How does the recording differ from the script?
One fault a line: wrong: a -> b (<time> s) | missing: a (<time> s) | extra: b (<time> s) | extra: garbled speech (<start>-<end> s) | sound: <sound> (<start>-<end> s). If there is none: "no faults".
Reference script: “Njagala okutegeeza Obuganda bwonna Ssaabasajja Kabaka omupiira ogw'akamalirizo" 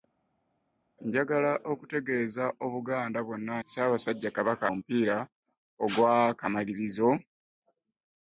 no faults